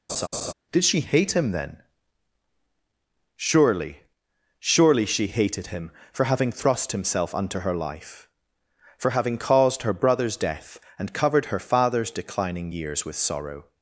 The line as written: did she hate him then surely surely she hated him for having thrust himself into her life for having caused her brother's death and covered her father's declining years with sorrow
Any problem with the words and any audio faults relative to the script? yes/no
yes